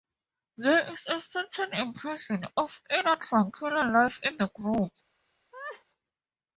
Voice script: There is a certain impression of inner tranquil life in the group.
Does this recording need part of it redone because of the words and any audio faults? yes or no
yes